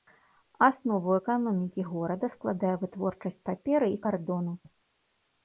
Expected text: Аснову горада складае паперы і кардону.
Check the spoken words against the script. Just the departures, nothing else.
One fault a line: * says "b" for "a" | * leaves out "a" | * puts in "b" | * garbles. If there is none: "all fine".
* puts in "эканомікі"
* puts in "вытворчасць"